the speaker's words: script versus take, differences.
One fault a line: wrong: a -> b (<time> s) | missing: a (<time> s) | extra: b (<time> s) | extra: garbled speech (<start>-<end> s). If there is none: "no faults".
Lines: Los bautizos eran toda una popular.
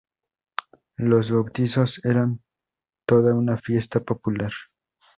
extra: fiesta (3.5 s)